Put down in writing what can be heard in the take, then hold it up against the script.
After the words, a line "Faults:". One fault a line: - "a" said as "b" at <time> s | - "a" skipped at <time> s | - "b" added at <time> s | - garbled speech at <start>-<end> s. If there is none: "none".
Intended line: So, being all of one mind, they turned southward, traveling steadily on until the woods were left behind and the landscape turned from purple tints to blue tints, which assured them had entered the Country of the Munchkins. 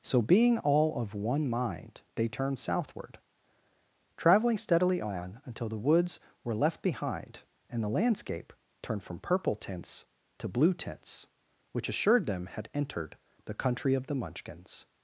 So, being all of one mind, they turned southward, traveling steadily on until the woods were left behind and the landscape turned from purple tints to blue tints, which assured them had entered the Country of the Munchkins.
Faults:
none